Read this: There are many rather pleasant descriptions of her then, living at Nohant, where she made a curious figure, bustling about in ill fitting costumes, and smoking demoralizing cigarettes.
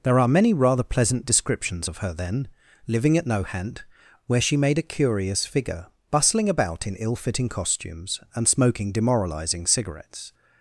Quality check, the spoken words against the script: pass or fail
pass